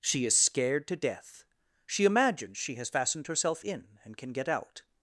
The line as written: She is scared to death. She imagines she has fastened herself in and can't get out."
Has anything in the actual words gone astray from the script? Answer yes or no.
yes